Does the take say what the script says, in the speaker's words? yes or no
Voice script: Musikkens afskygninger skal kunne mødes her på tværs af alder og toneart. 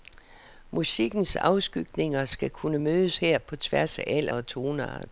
yes